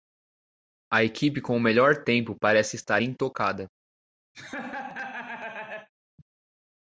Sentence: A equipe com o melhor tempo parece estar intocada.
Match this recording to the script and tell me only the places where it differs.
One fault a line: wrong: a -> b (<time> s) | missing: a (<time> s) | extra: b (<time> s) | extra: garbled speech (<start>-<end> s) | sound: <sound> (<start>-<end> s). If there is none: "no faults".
sound: laugh (4.3-5.9 s)